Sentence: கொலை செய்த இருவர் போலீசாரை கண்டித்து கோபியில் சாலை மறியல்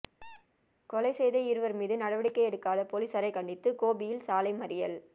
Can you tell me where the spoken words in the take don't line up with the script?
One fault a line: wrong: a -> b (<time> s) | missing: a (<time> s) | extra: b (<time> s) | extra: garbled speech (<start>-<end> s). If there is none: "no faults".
extra: மீது நடவடிக்கை எடுக்காத (1.7 s)